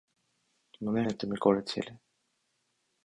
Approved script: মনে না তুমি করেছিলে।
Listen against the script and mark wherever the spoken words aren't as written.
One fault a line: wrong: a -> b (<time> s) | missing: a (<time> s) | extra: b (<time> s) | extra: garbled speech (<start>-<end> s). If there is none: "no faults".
no faults